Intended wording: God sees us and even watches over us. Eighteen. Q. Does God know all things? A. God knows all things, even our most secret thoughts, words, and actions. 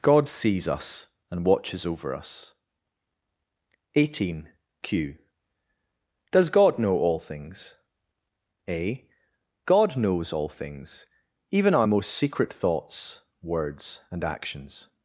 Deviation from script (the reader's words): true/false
true